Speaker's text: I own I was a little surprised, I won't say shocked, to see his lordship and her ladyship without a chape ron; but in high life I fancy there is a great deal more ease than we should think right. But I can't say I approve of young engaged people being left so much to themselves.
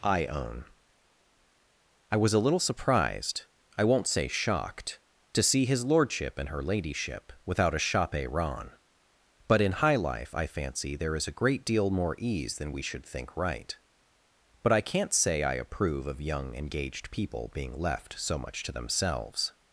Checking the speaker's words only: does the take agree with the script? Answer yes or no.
yes